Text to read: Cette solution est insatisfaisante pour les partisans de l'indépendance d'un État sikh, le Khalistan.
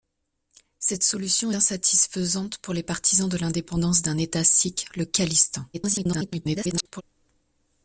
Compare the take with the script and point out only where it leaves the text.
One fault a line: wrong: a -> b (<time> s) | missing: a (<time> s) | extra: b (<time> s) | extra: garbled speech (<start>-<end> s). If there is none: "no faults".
missing: est (1.5 s)
extra: garbled speech (5.7-7.0 s)